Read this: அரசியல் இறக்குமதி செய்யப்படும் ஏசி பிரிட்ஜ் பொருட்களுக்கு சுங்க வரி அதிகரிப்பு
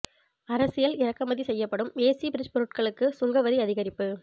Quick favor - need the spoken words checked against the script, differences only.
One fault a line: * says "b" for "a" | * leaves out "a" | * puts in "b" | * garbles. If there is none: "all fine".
all fine